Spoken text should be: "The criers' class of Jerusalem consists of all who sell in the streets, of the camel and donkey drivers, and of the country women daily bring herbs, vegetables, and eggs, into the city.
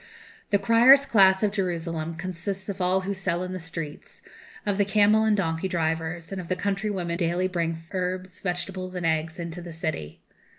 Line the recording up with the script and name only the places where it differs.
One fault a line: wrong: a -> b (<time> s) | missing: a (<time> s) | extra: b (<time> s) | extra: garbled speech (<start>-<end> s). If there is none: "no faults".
no faults